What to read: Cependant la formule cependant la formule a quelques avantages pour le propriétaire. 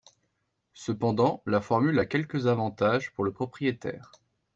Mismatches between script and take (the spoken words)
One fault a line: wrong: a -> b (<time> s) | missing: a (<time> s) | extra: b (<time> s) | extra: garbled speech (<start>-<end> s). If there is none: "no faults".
missing: cependant la formule (2.0 s)